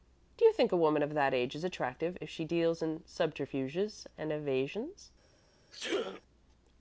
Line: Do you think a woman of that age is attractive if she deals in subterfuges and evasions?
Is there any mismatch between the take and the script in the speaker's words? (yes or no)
no